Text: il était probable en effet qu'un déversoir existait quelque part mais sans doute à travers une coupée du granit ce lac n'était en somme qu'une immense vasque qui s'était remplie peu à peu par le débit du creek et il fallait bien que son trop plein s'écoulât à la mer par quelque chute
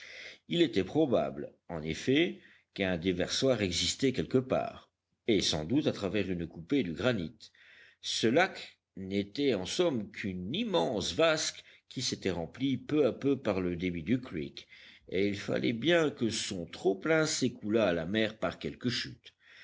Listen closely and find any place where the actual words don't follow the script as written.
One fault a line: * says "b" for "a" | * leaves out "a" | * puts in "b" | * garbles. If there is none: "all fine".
* says "et" for "mais"